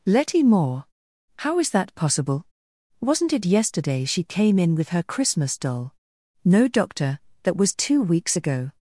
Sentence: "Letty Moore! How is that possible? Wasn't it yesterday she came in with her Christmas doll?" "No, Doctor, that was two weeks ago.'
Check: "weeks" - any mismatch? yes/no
no